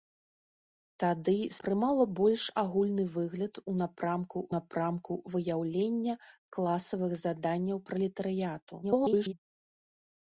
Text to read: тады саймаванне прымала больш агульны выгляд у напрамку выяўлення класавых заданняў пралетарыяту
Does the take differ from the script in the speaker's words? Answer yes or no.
yes